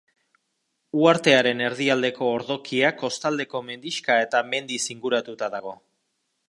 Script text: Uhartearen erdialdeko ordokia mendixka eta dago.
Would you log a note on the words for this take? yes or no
yes